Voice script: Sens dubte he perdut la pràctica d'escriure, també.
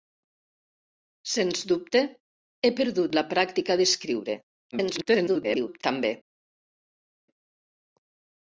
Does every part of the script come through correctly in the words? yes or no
no